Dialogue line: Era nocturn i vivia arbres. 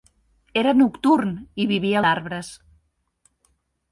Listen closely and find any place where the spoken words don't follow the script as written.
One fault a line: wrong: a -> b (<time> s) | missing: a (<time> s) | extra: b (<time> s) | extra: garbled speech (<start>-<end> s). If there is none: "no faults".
no faults